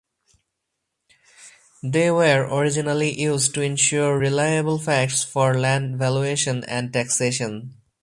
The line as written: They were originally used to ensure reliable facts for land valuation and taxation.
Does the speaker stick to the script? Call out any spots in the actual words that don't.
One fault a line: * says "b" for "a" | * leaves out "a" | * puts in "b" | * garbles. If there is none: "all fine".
all fine